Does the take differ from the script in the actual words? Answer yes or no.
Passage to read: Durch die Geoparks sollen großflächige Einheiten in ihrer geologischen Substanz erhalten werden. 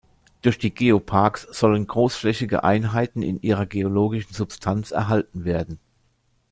no